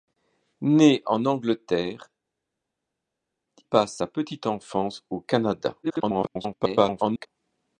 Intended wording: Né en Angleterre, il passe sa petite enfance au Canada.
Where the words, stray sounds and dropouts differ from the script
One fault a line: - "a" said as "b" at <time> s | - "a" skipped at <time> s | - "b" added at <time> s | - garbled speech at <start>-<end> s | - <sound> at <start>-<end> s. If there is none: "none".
- "il" skipped at 2.1 s
- garbled speech at 5.8-7.3 s